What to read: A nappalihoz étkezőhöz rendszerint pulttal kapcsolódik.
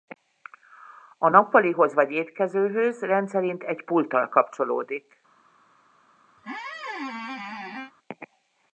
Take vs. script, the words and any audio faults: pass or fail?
fail